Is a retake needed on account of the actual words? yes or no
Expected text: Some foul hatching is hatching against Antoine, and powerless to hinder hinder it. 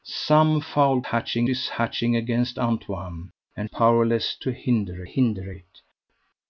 no